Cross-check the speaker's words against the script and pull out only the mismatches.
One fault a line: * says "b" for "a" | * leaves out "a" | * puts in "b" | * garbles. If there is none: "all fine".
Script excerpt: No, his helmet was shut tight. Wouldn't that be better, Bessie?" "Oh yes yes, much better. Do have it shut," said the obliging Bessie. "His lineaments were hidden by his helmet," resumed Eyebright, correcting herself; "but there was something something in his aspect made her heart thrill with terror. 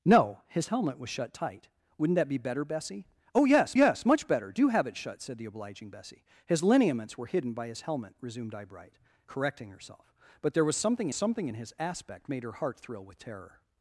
all fine